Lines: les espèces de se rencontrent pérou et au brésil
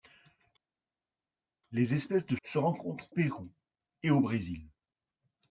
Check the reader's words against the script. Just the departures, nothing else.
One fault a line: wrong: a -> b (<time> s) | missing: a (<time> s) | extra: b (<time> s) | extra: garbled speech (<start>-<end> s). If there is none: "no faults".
no faults